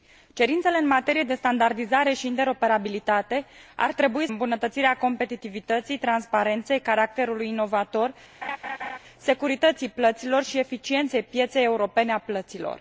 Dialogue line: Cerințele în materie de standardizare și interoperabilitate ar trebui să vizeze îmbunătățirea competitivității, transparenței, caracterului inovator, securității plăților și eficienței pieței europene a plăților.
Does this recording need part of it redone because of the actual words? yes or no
yes